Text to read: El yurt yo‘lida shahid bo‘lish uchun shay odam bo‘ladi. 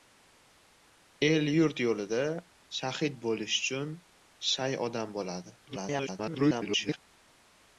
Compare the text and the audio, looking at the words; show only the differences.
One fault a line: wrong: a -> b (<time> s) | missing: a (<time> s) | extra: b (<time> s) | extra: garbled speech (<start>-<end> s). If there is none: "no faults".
extra: garbled speech (5.7-7.0 s)